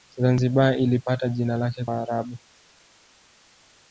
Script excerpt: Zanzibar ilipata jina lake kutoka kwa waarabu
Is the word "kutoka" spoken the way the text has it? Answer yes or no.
no